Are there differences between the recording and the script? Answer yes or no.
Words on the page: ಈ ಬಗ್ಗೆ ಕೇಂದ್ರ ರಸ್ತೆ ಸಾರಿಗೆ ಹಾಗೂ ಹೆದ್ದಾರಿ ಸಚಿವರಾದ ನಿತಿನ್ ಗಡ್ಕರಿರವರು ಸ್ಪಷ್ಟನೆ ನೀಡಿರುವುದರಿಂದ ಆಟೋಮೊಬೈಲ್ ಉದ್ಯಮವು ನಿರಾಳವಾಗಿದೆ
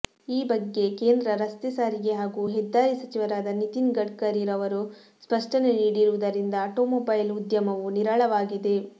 no